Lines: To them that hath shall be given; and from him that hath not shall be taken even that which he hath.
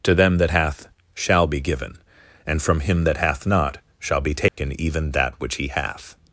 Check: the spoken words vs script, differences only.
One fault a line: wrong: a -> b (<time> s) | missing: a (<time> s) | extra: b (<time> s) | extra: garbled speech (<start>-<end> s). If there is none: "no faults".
no faults